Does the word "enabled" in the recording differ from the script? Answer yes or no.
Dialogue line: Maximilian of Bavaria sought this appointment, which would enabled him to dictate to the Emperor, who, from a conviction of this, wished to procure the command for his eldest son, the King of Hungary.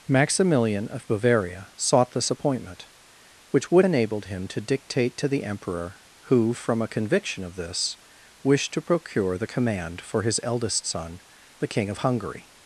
no